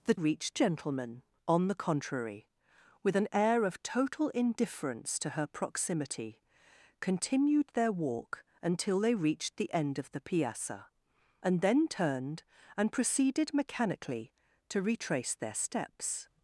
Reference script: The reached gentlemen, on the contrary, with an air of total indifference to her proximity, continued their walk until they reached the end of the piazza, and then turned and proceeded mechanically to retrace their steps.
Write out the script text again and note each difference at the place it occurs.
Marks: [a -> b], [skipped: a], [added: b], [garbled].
The reached gentlemen, on the contrary, with an air of total indifference to her proximity, continued their walk until they reached the end of the piazza, and then turned and proceeded mechanically to retrace their steps.